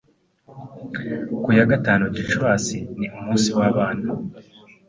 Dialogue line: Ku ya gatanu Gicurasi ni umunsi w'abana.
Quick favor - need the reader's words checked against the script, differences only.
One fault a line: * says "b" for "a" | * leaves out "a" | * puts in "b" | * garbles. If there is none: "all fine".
all fine